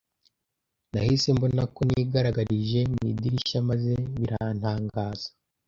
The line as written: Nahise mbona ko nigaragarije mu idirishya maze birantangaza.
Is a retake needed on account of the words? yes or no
no